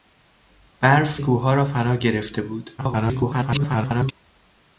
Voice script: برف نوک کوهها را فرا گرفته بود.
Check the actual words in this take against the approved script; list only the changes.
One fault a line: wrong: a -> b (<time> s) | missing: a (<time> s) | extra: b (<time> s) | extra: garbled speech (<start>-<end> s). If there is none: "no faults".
missing: نوک (1.2 s)
extra: garbled speech (2.8-4.1 s)